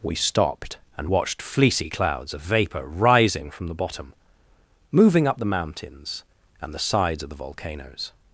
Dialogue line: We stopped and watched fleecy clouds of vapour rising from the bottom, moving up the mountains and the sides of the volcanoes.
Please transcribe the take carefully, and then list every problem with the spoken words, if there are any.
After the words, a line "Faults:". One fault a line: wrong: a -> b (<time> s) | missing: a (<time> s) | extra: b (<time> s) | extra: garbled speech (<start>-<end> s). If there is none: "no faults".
We stopped and watched fleecy clouds of vapour rising from the bottom, moving up the mountains and the sides of the volcanoes.
Faults:
no faults